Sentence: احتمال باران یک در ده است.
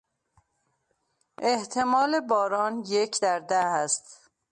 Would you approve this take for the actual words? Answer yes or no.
yes